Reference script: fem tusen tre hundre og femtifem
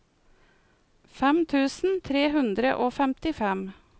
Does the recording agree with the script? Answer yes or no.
yes